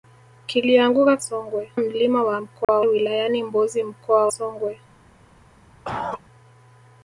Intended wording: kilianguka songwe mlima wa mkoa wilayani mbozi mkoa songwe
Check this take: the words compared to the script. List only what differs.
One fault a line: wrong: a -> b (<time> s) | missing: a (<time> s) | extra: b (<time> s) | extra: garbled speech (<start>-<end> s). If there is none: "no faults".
no faults